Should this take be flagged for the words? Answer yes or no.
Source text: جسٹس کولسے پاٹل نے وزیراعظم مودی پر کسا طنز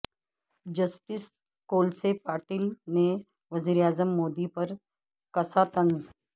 no